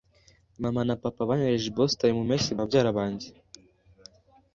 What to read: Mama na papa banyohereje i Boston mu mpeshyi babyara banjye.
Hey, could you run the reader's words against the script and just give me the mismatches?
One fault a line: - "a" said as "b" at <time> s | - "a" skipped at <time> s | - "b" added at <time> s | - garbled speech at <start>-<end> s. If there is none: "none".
none